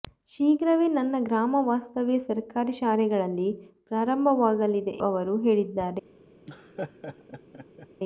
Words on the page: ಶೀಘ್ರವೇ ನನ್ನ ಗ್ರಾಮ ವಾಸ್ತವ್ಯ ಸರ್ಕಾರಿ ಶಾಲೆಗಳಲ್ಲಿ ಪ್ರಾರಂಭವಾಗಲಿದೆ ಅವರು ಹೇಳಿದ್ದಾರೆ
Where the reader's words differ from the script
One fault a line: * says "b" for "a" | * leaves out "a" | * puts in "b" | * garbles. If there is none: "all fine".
all fine